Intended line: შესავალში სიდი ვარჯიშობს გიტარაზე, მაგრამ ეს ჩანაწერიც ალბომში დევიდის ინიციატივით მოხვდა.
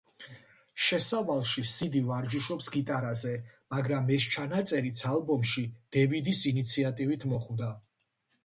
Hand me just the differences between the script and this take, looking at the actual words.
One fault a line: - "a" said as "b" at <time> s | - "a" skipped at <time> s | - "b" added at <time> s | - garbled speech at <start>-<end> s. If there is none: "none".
none